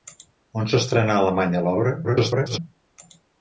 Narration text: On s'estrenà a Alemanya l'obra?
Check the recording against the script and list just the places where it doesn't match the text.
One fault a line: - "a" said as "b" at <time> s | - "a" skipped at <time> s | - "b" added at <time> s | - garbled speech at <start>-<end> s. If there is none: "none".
- garbled speech at 2.0-2.6 s